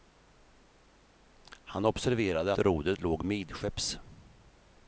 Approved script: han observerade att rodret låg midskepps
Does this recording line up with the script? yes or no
no